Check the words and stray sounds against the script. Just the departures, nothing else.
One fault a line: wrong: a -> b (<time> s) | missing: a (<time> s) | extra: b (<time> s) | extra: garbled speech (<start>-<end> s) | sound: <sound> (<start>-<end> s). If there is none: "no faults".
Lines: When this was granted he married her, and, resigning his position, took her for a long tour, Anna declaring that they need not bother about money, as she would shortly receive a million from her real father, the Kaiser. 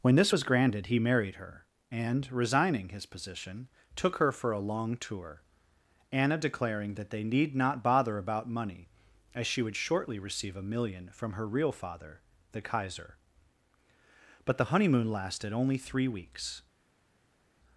extra: But the honeymoon lasted only three weeks (14.4 s)